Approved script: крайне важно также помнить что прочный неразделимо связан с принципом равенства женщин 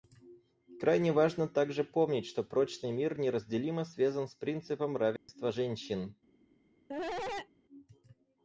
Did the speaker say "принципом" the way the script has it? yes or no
yes